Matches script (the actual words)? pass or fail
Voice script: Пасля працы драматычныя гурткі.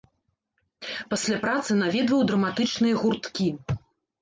fail